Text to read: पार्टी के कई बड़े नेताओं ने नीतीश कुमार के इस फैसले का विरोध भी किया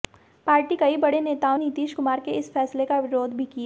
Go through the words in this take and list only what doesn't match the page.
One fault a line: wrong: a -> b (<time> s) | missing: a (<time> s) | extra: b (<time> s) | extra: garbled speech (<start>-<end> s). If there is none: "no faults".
missing: के (0.8 s)
missing: ने (1.6 s)